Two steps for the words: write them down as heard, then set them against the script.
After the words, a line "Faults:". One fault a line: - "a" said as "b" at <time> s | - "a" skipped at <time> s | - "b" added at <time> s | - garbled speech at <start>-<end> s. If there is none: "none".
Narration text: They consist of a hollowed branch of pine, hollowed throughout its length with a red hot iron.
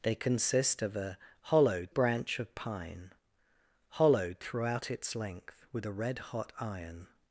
They consist of a hollowed branch of pine, hollowed throughout its length with a red hot iron.
Faults:
none